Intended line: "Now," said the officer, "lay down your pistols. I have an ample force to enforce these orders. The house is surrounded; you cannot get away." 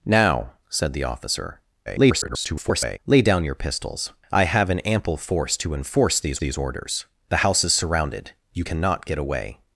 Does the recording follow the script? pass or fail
fail